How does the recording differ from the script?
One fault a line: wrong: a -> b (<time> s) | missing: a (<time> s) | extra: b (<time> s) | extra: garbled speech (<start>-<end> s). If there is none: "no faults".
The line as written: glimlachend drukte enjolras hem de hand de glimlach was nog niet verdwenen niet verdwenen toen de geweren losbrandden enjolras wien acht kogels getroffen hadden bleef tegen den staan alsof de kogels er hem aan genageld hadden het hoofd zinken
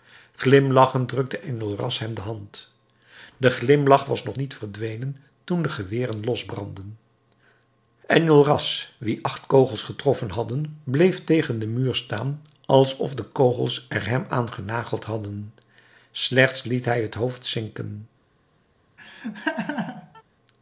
missing: niet verdwenen (5.2 s)
extra: muur (11.7 s)
extra: slechts liet hij (16.1 s)